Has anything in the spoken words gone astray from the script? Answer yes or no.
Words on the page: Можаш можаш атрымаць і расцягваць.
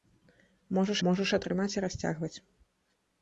no